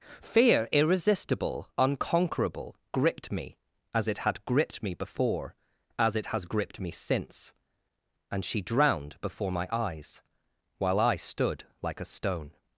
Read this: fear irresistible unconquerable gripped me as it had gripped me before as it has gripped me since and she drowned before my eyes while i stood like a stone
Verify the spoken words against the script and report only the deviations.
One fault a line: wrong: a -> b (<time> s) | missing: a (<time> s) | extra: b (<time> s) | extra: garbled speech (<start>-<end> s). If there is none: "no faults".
no faults